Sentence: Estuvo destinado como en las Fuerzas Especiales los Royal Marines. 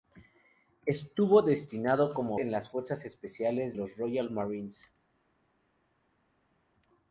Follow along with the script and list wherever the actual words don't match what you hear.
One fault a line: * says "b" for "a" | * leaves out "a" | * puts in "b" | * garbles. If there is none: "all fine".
all fine